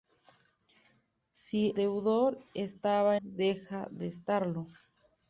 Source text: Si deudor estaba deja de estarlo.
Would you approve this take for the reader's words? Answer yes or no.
yes